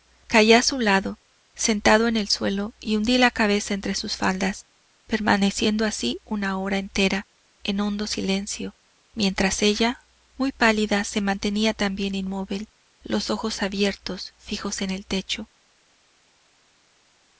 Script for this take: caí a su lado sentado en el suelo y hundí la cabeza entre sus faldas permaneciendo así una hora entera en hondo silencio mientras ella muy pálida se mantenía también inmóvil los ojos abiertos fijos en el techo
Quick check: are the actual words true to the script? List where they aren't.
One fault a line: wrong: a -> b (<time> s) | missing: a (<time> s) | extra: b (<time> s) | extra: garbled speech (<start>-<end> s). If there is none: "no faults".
no faults